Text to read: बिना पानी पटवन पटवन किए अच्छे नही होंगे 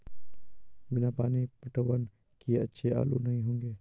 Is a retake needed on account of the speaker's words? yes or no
yes